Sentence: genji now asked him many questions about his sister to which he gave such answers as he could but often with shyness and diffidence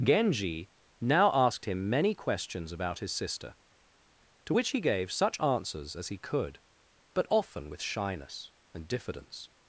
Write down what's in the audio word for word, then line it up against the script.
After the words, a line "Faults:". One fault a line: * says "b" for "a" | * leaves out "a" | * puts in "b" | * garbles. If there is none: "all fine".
genji now asked him many questions about his sister to which he gave such answers as he could but often with shyness and diffidence
Faults:
all fine